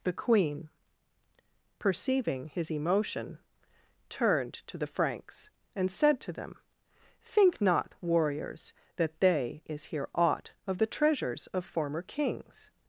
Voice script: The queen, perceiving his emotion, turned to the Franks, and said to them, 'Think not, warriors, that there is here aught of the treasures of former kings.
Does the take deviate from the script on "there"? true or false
true